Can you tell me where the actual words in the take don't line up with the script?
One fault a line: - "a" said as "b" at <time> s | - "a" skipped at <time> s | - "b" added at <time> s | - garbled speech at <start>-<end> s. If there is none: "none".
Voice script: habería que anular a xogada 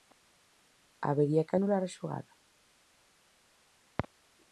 none